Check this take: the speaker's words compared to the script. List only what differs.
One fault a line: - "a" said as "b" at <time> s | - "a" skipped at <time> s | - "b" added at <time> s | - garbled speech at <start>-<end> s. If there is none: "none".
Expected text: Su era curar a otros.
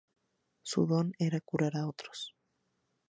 - "don" added at 0.9 s